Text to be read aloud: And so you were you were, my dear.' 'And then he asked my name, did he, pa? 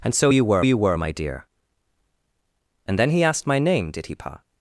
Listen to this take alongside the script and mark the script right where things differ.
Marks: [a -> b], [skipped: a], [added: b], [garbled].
And so you were you were, my dear.' 'And then he asked my name, did he, pa?